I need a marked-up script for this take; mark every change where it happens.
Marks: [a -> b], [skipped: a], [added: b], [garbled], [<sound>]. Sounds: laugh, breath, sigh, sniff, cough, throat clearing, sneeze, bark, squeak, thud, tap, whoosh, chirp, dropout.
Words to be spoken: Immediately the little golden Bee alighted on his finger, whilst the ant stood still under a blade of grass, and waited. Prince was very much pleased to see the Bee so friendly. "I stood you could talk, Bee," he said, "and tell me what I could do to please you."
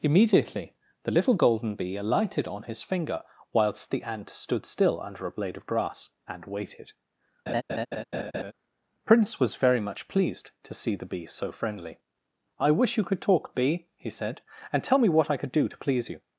Immediately the little golden Bee alighted on his finger, whilst the ant stood still under a blade of grass, and waited. [laugh] Prince was very much pleased to see the Bee so friendly. "I [stood -> wish] you could talk, Bee," he said, "and tell me what I could do to please you."